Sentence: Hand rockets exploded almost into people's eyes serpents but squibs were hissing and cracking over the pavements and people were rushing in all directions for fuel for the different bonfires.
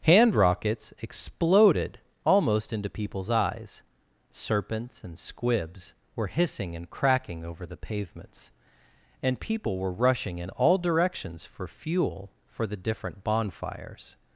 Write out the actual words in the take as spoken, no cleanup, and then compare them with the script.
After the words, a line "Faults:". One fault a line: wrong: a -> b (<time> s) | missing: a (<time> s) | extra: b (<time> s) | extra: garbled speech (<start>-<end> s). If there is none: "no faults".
Hand rockets exploded almost into people's eyes serpents and squibs were hissing and cracking over the pavements and people were rushing in all directions for fuel for the different bonfires.
Faults:
wrong: but -> and (5.0 s)